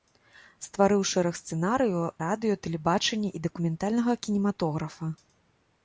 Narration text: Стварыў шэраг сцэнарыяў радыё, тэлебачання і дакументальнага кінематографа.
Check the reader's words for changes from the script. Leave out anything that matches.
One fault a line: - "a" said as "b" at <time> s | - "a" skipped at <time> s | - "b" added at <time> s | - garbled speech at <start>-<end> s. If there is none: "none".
none